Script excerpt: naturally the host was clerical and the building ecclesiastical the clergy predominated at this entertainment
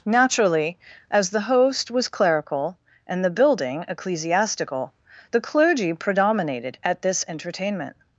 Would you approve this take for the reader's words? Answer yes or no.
no